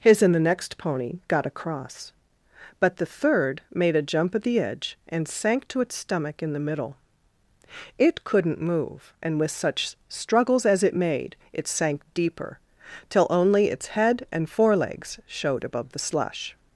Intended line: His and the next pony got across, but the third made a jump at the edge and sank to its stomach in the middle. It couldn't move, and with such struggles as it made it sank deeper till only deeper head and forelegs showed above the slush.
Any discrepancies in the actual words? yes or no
yes